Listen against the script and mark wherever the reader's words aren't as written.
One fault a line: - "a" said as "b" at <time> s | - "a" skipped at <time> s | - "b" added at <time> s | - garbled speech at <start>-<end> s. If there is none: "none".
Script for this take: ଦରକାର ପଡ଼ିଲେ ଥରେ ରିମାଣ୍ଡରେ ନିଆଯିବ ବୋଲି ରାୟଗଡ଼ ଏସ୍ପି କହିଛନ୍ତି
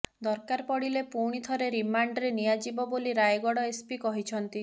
- "ପୁଣି" added at 1.1 s